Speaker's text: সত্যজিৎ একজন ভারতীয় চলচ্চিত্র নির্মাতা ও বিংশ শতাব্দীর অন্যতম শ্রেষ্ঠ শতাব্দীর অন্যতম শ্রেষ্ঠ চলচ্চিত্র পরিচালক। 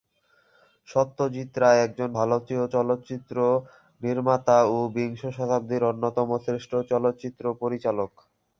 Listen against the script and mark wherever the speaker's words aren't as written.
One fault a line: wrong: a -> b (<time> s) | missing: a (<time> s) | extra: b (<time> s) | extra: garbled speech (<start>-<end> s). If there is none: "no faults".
extra: রায় (1.6 s)
missing: শতাব্দীর অন্যতম শ্রেষ্ঠ (6.7 s)